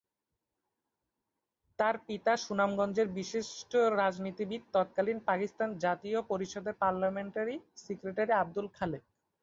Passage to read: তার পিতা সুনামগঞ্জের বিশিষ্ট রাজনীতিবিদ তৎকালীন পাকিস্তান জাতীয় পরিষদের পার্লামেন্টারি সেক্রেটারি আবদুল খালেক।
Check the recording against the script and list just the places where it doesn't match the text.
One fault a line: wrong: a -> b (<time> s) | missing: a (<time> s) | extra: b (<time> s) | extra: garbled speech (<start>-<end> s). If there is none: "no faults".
no faults